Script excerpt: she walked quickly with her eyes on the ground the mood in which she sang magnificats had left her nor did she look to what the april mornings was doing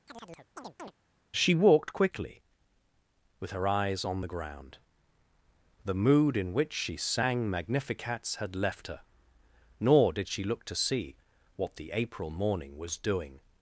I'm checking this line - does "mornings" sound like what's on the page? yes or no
no